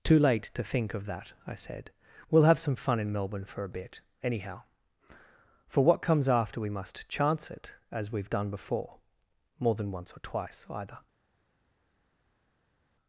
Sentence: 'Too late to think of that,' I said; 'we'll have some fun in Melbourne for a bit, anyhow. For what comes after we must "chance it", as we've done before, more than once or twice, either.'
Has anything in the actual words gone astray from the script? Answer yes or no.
no